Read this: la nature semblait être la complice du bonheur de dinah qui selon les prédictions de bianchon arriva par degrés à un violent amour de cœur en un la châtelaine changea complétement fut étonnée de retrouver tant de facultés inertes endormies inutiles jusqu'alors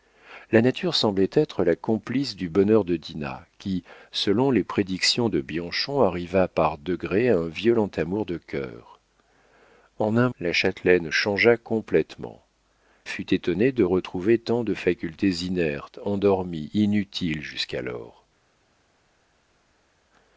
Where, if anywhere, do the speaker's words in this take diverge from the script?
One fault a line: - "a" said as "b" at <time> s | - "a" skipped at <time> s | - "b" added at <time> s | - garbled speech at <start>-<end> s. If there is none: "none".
none